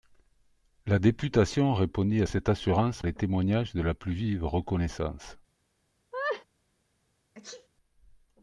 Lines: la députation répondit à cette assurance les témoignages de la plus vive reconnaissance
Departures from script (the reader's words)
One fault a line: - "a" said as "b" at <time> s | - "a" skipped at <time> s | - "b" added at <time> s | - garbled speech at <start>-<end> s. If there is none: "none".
none